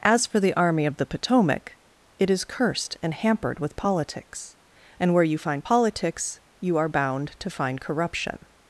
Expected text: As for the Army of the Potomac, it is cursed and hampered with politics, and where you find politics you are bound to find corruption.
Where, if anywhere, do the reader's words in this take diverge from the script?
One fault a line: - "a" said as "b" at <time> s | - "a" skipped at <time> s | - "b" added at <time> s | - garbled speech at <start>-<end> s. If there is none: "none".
none